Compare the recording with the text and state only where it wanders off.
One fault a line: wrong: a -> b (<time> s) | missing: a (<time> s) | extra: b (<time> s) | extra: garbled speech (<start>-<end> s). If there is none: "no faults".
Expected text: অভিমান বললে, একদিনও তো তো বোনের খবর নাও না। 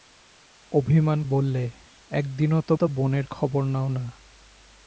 no faults